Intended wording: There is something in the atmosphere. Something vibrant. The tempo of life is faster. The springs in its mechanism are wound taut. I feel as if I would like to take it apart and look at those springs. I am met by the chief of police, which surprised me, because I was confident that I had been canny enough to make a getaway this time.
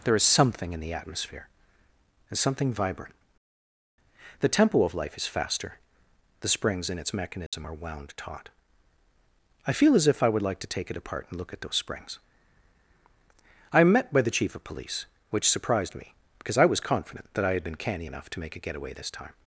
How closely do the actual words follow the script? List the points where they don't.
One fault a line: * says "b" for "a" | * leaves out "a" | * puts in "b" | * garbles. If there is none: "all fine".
* puts in "and"